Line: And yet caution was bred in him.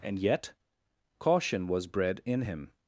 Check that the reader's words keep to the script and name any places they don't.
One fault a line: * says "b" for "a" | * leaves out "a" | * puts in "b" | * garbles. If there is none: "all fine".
all fine